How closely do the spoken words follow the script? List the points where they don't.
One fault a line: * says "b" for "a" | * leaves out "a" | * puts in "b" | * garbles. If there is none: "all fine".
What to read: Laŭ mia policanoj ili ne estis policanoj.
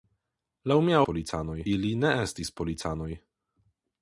all fine